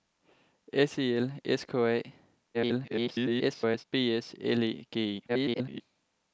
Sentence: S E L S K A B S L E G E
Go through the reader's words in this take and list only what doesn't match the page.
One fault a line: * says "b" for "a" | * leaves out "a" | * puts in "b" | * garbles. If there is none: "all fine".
* garbles
* garbles